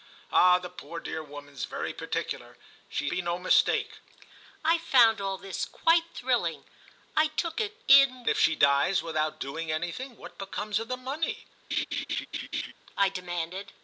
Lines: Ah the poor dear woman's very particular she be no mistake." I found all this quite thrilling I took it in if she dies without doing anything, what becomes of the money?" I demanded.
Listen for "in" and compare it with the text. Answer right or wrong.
right